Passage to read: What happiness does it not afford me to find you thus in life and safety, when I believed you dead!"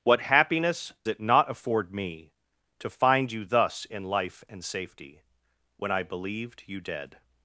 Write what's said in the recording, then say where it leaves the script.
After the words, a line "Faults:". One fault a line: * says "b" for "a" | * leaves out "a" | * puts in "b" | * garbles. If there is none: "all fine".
What happiness it not afford me to find you thus in life and safety, when I believed you dead!"
Faults:
* leaves out "does"